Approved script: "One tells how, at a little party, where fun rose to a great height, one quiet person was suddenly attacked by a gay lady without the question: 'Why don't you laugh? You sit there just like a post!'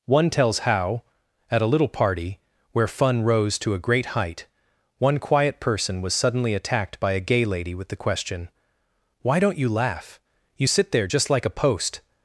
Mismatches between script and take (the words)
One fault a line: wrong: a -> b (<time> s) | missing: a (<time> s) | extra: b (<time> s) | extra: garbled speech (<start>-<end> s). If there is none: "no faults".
wrong: without -> with (7.8 s)